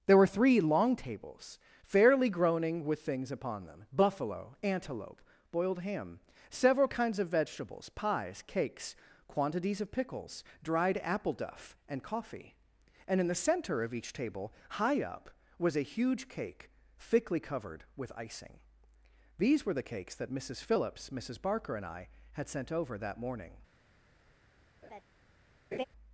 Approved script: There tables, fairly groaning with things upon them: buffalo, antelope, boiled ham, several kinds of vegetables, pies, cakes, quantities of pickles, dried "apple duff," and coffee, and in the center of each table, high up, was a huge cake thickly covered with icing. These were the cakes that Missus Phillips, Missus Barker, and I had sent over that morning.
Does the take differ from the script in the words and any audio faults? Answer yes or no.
yes